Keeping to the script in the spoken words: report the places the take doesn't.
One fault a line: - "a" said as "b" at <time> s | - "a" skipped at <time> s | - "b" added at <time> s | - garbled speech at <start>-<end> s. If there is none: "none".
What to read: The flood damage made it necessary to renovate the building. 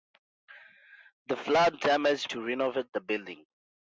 - "made it necessary" skipped at 2.3 s